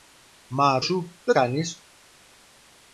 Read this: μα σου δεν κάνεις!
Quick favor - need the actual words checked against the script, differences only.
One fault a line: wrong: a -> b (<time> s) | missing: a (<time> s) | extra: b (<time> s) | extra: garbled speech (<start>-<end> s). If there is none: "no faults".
no faults